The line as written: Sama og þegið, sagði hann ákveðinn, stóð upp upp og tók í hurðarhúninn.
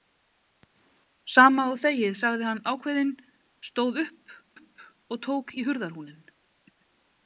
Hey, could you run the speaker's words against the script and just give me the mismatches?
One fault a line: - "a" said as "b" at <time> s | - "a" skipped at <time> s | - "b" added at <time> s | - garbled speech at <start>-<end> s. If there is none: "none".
none